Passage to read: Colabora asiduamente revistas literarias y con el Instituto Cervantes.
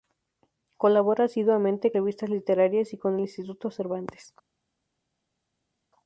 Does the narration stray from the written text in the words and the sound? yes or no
no